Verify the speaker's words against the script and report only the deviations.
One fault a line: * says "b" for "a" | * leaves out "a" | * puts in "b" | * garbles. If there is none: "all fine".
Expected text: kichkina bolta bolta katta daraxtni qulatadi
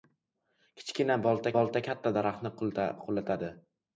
all fine